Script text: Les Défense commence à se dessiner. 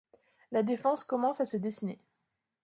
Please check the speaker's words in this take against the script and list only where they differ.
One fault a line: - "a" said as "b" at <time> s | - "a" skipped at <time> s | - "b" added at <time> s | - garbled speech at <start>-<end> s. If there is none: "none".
- "Les" said as "La" at 0.5 s